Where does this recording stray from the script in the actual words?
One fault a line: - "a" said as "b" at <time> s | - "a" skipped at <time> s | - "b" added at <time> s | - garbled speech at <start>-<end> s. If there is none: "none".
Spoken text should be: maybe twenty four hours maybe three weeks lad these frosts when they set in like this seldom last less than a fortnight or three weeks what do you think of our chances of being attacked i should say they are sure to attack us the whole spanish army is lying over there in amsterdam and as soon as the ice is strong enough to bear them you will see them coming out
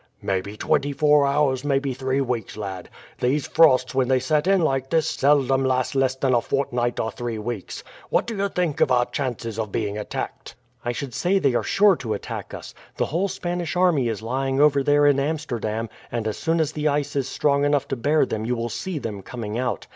none